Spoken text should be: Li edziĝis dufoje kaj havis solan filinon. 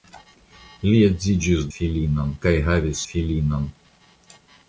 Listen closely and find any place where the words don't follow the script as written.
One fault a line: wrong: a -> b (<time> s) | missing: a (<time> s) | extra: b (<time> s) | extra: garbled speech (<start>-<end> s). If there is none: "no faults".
wrong: dufoje -> filinon (1.8 s)
missing: solan (3.0 s)